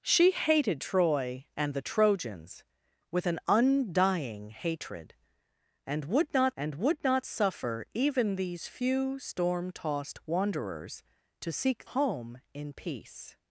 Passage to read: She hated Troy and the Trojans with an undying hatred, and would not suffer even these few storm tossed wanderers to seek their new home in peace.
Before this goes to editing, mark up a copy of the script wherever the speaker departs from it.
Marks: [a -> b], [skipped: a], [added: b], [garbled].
She hated Troy and the Trojans with an undying hatred, and would not [added: and would not] suffer even these few storm tossed wanderers to seek [skipped: their new] home in peace.